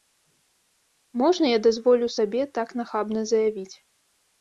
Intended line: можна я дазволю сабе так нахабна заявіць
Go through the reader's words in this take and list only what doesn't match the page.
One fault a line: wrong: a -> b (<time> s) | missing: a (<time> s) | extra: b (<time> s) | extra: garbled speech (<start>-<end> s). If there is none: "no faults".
no faults